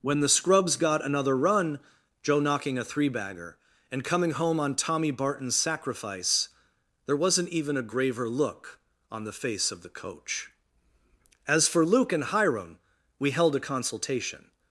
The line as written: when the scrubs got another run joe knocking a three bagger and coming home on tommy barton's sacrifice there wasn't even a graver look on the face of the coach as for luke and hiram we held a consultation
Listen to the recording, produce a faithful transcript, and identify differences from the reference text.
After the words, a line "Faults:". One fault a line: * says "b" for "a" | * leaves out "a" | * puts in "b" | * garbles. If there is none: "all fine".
when the scrubs got another run joe knocking a three bagger and coming home on tommy barton's sacrifice there wasn't even a graver look on the face of the coach as for luke and hiram we held a consultation
Faults:
all fine